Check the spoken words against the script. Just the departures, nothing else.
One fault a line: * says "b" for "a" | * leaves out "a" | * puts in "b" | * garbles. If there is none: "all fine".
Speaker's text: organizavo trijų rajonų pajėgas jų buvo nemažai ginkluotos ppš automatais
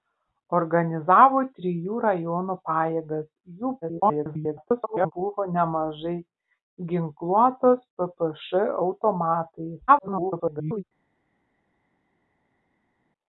* garbles
* garbles